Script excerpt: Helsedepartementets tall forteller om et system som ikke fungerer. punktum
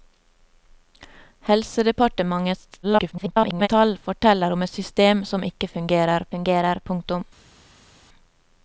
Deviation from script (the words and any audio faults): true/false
true